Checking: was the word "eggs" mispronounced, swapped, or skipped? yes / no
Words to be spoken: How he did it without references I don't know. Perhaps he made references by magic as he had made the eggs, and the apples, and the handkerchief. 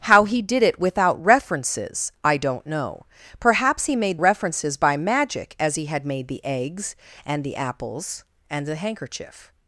no